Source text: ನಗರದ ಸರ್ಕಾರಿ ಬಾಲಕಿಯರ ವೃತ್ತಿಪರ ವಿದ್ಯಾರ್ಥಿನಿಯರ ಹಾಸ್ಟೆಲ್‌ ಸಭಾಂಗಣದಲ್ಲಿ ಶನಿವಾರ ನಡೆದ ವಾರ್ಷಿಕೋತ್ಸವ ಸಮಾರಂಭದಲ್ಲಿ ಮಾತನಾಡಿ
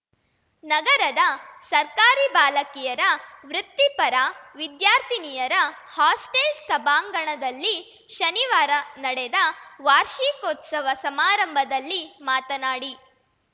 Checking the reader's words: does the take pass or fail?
pass